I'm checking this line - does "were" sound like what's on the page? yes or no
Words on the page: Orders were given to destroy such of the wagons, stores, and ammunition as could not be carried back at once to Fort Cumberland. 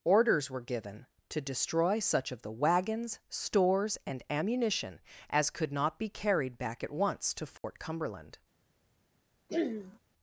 yes